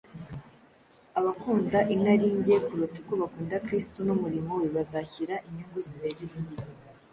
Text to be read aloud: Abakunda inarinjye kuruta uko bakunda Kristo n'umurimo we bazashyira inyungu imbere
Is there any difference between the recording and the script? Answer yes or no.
no